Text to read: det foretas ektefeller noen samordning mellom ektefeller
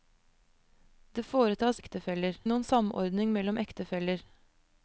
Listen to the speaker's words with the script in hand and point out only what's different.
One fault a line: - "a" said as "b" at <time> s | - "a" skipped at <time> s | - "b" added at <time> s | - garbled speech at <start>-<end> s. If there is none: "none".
none